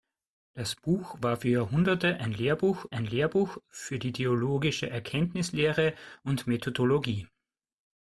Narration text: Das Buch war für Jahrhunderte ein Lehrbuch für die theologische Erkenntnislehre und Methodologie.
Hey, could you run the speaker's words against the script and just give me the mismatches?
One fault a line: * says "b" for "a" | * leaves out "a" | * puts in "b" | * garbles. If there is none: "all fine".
* puts in "ein Lehrbuch"